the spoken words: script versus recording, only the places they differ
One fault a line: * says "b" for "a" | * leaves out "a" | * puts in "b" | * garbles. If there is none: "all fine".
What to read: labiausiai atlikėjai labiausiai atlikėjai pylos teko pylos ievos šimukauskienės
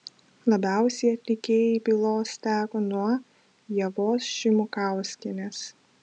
* leaves out "labiausiai atlikėjai"
* says "nuo" for "pylos"